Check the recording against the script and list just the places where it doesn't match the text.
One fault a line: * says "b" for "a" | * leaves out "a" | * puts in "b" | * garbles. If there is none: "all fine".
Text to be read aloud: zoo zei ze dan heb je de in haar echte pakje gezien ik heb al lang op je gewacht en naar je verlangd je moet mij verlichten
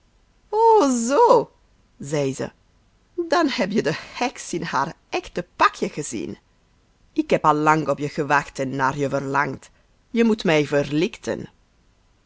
* puts in "heks"